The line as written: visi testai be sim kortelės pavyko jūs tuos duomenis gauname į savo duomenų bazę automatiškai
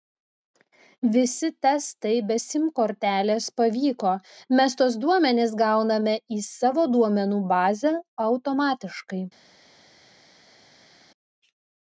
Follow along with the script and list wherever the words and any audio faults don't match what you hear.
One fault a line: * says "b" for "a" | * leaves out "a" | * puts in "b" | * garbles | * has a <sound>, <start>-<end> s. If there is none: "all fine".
* says "mes" for "jūs"